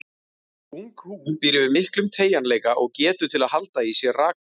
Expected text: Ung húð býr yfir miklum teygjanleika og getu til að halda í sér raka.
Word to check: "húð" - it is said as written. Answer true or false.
true